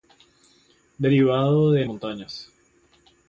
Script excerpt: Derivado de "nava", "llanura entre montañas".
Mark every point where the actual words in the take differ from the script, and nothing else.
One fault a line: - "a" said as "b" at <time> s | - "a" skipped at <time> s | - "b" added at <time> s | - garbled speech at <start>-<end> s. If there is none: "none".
- "nava llanura entre" skipped at 1.9 s